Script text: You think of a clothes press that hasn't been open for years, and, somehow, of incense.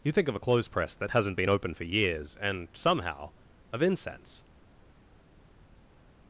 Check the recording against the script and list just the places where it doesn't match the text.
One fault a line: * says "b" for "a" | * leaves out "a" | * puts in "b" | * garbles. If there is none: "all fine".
all fine